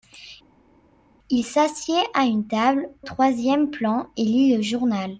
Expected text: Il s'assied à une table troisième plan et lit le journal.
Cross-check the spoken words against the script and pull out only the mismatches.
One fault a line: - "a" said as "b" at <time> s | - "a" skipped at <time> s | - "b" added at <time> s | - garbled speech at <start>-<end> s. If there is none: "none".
none